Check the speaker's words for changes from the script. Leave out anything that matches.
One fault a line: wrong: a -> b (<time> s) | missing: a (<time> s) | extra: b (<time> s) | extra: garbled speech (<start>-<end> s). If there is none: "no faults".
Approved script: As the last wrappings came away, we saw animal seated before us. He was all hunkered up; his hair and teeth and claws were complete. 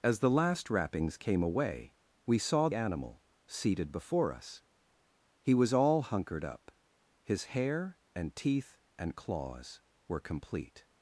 no faults